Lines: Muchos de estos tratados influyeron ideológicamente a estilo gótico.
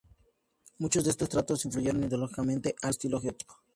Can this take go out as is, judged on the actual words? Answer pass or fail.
pass